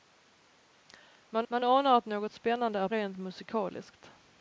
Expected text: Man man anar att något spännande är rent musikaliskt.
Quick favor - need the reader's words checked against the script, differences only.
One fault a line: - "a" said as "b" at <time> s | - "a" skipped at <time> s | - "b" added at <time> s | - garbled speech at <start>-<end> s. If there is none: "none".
none